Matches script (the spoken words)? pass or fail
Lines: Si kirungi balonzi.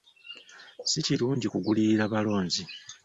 fail